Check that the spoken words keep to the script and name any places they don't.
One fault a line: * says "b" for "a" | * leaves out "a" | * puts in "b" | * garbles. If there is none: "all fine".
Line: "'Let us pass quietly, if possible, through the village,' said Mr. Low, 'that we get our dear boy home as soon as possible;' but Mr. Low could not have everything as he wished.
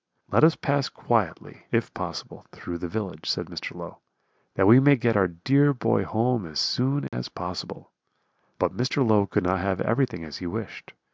* puts in "may"